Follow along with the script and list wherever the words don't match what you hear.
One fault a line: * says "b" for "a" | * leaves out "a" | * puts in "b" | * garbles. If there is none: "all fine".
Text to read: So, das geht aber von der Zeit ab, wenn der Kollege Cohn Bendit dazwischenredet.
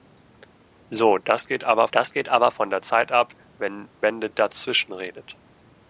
* puts in "das geht aber"
* leaves out "der Kollege Cohn"